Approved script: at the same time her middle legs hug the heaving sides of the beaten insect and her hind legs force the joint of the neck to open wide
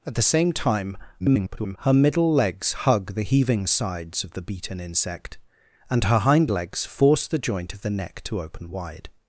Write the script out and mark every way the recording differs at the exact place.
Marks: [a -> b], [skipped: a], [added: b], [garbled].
at the same time [garbled] her middle legs hug the heaving sides of the beaten insect and her hind legs force the joint of the neck to open wide